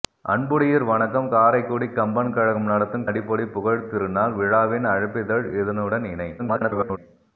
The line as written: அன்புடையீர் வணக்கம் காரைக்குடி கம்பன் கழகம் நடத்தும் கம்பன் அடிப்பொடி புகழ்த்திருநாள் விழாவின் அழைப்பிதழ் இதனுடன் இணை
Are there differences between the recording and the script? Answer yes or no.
yes